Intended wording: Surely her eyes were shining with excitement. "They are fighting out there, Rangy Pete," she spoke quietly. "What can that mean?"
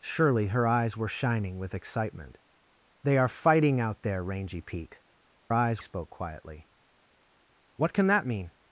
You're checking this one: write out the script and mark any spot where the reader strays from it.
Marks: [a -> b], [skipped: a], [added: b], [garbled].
Surely her eyes were shining with excitement. "They are fighting out there, Rangy Pete," [she -> eyes] spoke quietly. "What can that mean?"